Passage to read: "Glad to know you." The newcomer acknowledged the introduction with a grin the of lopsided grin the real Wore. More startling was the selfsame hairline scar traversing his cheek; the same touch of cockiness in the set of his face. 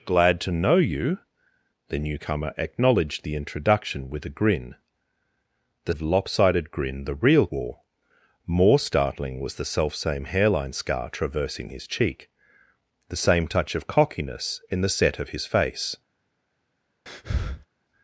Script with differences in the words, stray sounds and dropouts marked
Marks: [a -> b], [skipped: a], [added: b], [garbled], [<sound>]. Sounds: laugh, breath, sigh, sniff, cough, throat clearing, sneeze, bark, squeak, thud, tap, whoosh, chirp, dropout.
"Glad to know you." The newcomer acknowledged the introduction with a grin the of lopsided grin the real Wore. More startling was the selfsame hairline scar traversing his cheek; the same touch of cockiness in the set of his face. [breath]